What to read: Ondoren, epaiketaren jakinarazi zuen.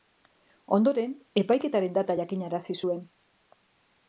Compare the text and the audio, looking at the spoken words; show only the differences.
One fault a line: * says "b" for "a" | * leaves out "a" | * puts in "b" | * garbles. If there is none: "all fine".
* puts in "data"